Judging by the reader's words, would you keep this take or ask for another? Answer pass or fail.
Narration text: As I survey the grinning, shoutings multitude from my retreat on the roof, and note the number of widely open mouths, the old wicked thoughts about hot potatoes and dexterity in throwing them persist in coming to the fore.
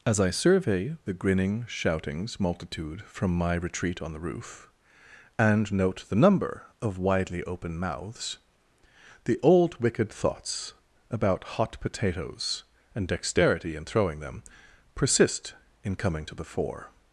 pass